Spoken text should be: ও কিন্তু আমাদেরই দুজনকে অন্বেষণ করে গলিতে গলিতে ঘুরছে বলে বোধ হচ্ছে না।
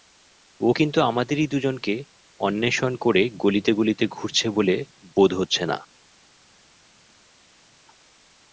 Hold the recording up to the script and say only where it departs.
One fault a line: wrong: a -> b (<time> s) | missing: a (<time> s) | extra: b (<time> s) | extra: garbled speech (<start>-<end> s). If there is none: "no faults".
no faults